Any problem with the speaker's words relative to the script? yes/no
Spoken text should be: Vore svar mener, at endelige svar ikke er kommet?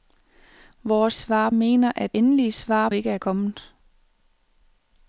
no